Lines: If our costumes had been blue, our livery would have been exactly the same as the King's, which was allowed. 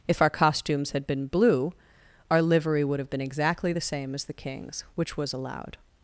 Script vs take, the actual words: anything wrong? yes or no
no